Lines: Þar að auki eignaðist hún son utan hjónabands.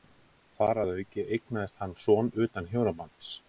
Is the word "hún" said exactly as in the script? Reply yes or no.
no